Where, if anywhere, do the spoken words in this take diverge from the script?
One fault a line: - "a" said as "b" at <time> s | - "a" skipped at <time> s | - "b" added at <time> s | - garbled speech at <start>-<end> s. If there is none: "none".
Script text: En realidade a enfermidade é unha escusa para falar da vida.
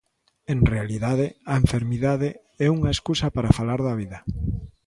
none